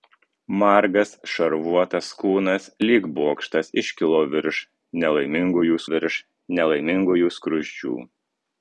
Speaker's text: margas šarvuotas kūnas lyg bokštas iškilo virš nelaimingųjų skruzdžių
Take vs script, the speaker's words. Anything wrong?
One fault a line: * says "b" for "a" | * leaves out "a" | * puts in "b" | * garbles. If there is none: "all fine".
* puts in "virš nelaimingųjų"